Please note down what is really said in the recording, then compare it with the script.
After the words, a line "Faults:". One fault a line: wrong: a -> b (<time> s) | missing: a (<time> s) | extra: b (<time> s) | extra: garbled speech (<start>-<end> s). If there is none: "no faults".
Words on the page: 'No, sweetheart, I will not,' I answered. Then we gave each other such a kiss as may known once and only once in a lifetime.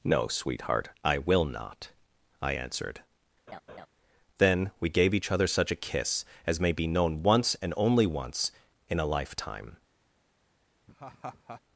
'No, sweetheart, I will not,' I answered. Then we gave each other such a kiss as may be known once and only once in a lifetime.
Faults:
extra: be (6.7 s)